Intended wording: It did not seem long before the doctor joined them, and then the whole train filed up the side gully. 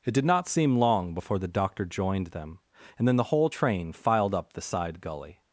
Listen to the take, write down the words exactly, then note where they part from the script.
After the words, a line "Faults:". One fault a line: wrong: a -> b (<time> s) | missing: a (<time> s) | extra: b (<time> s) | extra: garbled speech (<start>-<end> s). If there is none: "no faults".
It did not seem long before the doctor joined them, and then the whole train filed up the side gully.
Faults:
no faults